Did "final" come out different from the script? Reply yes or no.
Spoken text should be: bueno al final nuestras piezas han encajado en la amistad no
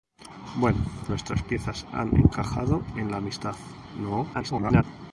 yes